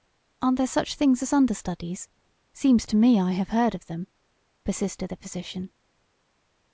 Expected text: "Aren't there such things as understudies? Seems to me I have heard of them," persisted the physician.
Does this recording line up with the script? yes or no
yes